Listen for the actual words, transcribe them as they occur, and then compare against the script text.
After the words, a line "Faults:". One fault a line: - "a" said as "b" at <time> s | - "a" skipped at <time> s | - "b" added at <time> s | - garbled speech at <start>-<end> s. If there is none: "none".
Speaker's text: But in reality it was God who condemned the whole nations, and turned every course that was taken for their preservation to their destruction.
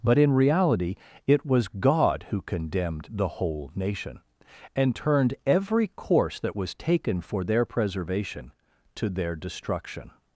But in reality it was God who condemned the whole nation, and turned every course that was taken for their preservation to their destruction.
Faults:
- "nations" said as "nation" at 3.7 s